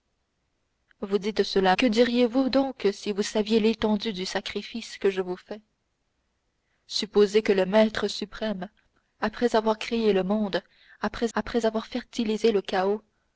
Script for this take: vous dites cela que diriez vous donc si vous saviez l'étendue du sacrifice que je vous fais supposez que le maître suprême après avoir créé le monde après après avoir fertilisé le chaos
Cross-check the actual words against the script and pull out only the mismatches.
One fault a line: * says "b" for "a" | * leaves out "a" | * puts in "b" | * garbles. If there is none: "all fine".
all fine